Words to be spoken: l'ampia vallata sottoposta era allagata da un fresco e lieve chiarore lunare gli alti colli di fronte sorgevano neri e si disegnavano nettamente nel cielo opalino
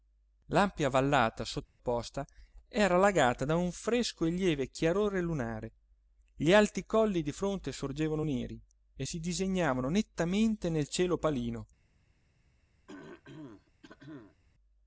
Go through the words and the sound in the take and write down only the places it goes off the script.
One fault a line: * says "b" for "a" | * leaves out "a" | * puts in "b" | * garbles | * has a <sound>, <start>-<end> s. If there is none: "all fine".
* has a dropout, 1.6-1.8 s
* has a throat clearing, 12.9-14.4 s